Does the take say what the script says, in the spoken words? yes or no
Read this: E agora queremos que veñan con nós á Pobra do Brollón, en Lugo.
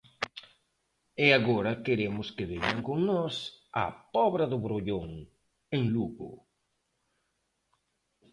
yes